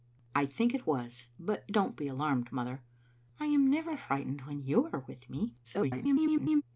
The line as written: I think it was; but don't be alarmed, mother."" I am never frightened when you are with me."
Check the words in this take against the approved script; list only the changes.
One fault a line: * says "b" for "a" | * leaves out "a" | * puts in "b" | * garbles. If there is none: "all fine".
* garbles